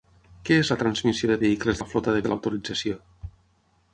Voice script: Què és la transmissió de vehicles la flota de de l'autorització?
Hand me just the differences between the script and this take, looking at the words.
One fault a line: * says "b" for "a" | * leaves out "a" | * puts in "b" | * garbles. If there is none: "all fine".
all fine